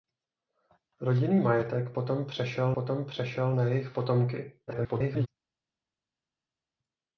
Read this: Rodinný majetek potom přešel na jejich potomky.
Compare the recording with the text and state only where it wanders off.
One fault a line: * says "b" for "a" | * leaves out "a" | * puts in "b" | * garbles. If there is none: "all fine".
* puts in "potom přešel"
* garbles